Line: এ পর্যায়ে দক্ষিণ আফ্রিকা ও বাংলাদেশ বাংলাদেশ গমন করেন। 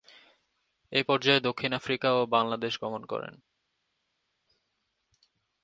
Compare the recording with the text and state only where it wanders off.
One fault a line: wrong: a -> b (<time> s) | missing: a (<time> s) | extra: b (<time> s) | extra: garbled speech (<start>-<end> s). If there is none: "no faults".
missing: বাংলাদেশ (2.7 s)